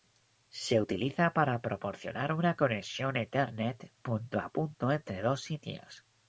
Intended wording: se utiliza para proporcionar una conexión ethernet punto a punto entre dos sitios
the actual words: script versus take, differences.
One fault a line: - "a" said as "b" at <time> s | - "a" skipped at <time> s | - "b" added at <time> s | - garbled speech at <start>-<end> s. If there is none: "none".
none